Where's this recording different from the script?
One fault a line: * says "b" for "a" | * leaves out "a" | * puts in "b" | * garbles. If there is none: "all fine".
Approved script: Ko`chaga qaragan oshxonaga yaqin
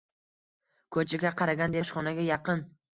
all fine